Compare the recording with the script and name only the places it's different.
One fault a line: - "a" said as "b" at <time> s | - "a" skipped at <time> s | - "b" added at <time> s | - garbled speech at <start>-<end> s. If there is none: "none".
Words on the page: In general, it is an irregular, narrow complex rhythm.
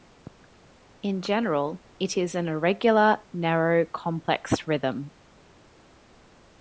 none